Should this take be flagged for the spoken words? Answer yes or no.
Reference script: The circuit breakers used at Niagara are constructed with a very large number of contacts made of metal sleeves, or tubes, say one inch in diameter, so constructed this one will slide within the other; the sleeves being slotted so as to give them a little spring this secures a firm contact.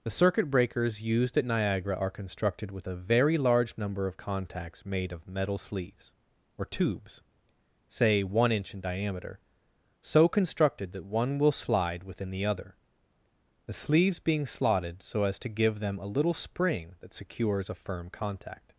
yes